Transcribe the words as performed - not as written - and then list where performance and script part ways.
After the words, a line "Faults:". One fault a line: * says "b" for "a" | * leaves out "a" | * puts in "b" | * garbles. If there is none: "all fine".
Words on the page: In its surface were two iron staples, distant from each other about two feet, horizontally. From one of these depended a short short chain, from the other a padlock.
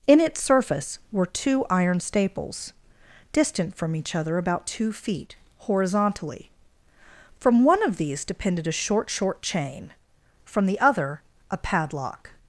In its surface were two iron staples, distant from each other about two feet, horizontally. From one of these depended a short short chain, from the other a padlock.
Faults:
all fine